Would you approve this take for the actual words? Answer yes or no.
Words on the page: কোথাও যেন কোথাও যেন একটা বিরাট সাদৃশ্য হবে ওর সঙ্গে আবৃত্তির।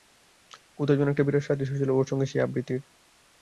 no